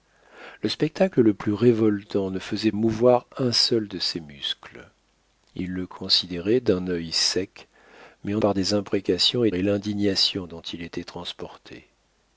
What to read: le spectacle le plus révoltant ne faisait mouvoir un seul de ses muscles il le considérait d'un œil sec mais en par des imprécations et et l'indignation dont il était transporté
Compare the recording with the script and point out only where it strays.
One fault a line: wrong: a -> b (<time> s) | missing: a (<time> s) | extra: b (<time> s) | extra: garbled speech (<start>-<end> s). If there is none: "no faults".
no faults